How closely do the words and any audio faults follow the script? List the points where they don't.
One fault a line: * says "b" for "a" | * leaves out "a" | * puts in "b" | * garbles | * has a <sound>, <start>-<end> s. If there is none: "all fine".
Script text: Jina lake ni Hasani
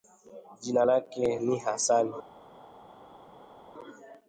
all fine